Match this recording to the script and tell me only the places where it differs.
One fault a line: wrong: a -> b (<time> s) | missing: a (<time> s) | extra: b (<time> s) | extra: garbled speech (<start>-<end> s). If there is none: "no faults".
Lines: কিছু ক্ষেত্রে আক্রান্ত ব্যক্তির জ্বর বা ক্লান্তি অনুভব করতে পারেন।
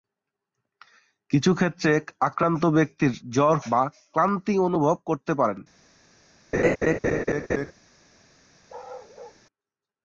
no faults